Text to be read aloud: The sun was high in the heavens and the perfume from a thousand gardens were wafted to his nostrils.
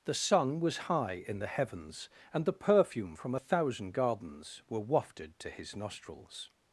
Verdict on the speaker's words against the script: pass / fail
pass